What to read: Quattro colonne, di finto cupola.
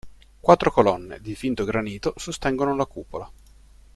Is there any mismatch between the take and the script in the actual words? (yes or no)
yes